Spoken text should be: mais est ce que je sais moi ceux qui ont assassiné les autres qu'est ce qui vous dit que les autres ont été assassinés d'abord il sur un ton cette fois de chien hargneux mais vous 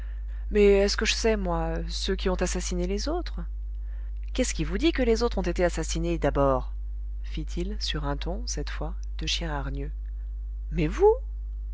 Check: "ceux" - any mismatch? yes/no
no